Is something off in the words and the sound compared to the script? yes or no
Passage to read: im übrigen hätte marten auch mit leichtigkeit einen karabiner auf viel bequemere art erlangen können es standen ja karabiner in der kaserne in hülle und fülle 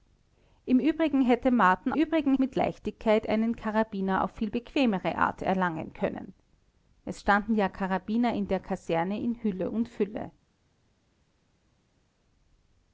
yes